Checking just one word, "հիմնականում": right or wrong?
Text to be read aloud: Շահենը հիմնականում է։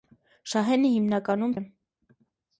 right